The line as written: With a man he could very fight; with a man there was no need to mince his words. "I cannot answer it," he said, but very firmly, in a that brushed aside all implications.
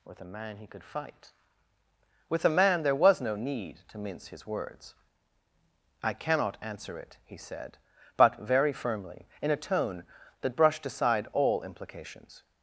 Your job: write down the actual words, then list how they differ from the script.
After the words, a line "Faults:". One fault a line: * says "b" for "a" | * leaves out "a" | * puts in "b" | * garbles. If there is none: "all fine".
With a man he could fight; with a man there was no need to mince his words. "I cannot answer it," he said, but very firmly, in a tone that brushed aside all implications.
Faults:
* leaves out "very"
* puts in "tone"